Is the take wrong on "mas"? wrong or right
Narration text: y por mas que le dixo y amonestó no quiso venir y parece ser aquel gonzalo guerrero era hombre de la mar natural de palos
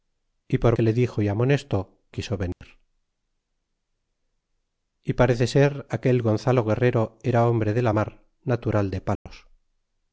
wrong